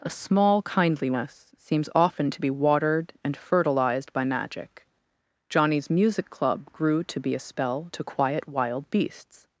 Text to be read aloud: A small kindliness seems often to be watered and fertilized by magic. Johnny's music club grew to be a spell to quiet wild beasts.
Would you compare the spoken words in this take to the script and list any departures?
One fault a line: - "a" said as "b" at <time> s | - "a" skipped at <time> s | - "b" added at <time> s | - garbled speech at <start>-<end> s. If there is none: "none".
none